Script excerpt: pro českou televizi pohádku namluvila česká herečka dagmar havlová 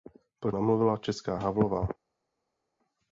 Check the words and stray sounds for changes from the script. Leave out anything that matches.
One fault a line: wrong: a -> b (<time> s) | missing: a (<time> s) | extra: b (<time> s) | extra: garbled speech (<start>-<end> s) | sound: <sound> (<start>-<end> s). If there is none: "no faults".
missing: českou televizi pohádku (0.5 s)
missing: herečka dagmar (1.4 s)